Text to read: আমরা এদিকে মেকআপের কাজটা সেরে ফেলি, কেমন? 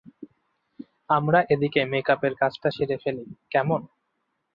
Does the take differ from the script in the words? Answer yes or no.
no